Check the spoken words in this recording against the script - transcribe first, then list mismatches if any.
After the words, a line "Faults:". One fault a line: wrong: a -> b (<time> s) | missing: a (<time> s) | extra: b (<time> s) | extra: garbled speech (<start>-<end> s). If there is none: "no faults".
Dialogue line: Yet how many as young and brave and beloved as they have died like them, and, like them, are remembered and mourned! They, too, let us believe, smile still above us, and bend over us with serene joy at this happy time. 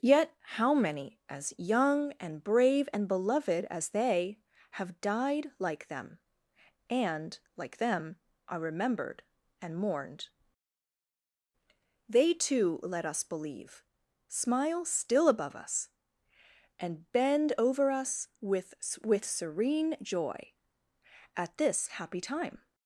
Yet how many as young and brave and beloved as they have died like them, and, like them, are remembered and mourned! They, too, let us believe, smile still above us, and bend over us with with serene joy at this happy time.
Faults:
extra: with (19.0 s)